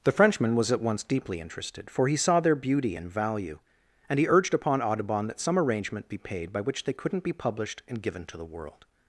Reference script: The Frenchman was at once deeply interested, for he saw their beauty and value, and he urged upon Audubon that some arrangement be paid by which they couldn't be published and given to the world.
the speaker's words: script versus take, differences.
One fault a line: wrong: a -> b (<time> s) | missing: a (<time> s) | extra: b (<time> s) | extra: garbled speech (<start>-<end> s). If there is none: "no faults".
no faults